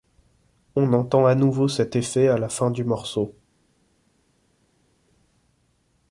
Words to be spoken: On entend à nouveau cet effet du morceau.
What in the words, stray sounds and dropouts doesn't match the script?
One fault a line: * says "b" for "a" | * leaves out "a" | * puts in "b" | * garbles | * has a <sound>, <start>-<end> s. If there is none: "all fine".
* puts in "à la fin"